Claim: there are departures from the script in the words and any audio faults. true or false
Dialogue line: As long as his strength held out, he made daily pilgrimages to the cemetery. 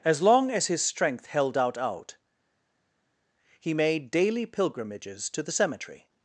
true